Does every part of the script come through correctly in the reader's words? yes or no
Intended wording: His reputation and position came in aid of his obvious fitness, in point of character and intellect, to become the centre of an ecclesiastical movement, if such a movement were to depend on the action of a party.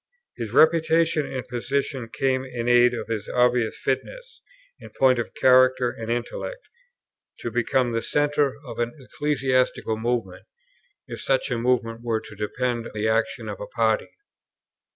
no